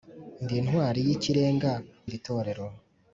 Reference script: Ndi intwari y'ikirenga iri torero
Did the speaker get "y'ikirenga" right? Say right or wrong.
right